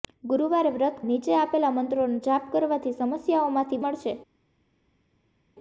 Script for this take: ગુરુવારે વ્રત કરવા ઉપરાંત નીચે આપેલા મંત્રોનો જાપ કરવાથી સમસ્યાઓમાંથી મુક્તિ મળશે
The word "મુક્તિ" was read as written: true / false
false